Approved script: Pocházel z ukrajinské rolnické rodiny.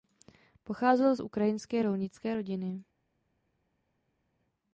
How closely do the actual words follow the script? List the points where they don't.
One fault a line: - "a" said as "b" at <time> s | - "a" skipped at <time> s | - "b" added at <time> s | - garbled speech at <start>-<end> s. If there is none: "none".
none